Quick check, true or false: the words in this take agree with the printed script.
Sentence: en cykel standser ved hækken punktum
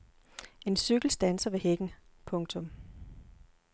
true